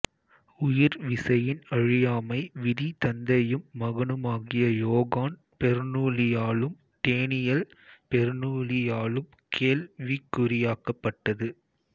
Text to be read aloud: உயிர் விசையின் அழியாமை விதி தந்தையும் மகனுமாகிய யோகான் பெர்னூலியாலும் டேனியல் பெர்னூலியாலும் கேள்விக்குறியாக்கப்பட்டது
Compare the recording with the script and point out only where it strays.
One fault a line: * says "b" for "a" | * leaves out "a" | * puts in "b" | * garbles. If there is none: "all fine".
all fine